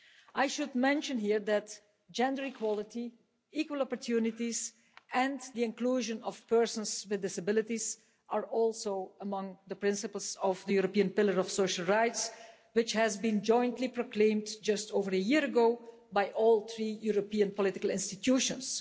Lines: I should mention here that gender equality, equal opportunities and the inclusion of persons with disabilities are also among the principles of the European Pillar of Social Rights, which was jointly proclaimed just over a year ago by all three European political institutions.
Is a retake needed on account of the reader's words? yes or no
no